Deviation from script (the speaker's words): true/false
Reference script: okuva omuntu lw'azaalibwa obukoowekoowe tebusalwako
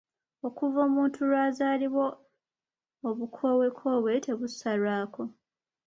false